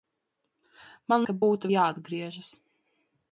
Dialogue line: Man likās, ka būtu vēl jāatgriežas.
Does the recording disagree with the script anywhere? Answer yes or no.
yes